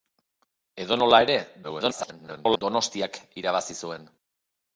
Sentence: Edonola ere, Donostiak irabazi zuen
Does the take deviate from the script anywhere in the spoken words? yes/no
yes